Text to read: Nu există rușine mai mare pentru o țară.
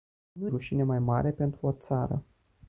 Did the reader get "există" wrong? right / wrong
wrong